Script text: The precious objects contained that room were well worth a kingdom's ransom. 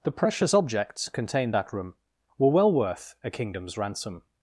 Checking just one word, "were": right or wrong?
right